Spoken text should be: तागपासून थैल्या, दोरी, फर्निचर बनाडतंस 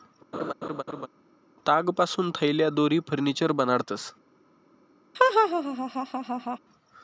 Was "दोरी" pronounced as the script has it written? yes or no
yes